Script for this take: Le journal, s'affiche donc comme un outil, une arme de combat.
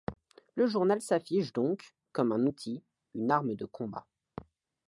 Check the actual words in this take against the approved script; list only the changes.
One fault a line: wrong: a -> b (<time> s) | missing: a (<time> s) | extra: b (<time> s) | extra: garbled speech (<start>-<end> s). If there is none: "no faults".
no faults